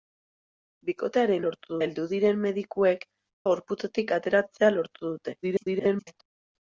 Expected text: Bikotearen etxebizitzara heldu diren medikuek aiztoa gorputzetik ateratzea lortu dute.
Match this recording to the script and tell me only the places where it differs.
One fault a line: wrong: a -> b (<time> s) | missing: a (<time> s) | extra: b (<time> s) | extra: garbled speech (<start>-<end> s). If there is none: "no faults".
wrong: etxebizitzara -> lortu (1.5 s)
missing: aiztoa (3.1 s)
extra: garbled speech (5.4-6.2 s)